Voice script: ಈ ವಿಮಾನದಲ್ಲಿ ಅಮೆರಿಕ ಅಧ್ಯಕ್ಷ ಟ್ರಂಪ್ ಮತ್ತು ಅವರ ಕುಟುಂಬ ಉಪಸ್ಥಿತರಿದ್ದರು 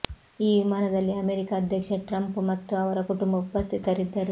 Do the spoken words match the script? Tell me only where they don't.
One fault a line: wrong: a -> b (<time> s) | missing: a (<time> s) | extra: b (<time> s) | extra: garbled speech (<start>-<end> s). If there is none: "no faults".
no faults